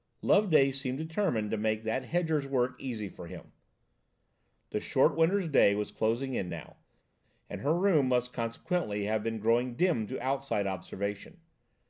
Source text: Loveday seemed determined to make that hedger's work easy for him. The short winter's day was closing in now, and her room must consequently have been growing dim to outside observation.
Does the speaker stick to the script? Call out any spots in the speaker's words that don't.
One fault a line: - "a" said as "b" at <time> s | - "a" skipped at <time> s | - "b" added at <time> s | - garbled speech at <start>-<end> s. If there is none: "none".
none